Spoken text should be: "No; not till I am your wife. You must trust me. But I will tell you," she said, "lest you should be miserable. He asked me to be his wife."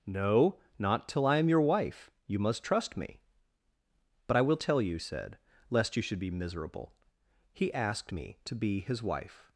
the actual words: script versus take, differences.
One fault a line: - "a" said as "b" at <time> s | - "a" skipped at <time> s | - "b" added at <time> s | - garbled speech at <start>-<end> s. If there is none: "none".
- "she" skipped at 5.0 s